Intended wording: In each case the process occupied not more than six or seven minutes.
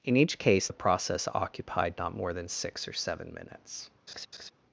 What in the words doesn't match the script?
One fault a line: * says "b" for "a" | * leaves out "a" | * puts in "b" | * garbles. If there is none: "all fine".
all fine